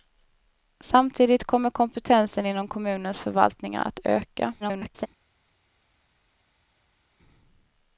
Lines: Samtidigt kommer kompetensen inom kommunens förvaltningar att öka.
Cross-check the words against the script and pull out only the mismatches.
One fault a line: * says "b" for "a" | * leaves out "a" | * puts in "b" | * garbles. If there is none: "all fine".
* garbles